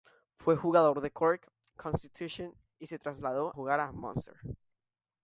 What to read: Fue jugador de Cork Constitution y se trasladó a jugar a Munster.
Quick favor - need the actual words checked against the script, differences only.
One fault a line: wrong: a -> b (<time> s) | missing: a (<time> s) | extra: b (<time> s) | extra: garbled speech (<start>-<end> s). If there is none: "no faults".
missing: a (3.5 s)